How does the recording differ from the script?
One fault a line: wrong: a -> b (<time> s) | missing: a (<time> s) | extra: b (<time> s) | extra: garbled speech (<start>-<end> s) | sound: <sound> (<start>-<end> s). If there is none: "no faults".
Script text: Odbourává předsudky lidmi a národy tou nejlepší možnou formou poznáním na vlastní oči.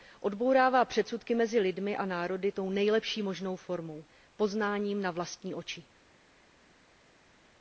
extra: mezi (1.4 s)